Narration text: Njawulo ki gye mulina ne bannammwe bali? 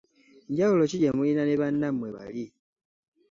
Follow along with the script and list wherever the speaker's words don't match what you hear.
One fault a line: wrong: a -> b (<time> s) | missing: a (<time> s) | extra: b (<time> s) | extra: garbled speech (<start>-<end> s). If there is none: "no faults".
no faults